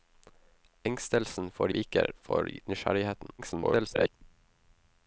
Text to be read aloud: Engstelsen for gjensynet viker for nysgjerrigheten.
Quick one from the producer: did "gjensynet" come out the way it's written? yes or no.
no